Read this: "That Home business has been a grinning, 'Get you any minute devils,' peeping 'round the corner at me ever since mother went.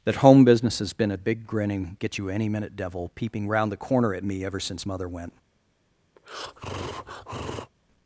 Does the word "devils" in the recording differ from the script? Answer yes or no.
yes